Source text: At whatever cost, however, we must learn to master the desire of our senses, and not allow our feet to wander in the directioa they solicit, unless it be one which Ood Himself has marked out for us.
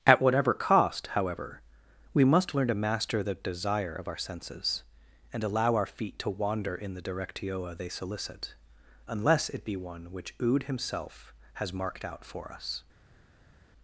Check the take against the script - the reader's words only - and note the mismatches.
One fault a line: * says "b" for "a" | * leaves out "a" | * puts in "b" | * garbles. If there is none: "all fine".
* leaves out "not"